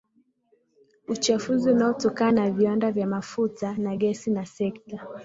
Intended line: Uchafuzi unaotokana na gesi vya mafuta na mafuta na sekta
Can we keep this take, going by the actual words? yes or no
no